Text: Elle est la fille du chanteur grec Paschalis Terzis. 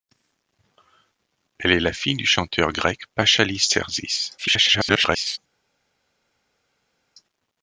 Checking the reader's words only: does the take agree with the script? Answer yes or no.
no